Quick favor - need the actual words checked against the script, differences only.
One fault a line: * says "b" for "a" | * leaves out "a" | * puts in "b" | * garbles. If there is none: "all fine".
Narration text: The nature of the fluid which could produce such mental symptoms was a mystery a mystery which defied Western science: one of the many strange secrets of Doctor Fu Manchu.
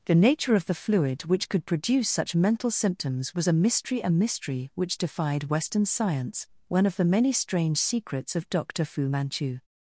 all fine